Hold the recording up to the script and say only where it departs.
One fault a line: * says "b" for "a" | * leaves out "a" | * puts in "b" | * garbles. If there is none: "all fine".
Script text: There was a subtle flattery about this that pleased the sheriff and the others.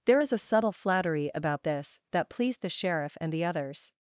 * says "is" for "was"